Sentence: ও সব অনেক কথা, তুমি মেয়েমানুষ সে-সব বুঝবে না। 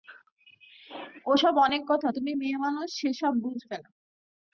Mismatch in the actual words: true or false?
false